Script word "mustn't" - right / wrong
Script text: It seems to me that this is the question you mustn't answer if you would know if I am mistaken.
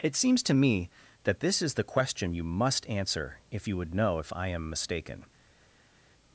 wrong